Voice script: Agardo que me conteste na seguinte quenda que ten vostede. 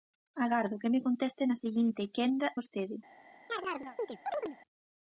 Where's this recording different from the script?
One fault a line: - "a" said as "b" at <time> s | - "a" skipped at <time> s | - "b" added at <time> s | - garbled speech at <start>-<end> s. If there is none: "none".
- "que ten" skipped at 2.5 s